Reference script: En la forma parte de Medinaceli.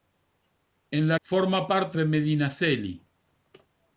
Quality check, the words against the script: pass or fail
pass